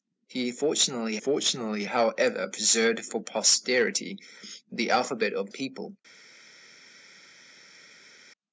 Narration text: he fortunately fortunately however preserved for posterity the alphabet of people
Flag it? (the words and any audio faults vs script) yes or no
no